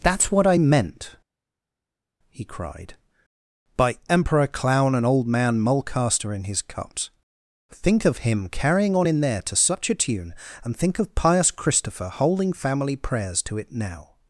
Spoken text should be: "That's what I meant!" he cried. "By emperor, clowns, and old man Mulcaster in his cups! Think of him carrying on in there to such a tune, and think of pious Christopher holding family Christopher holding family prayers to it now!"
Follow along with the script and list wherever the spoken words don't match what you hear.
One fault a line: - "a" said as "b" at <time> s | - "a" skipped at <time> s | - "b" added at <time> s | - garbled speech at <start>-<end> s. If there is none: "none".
- "clowns" said as "clown" at 4.5 s
- "Christopher holding family" skipped at 13.0 s